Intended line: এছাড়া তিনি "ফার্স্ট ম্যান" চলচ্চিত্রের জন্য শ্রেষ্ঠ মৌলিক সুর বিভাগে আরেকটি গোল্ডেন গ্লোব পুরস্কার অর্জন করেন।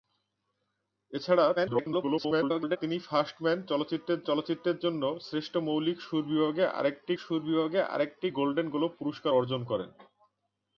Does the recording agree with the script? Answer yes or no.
no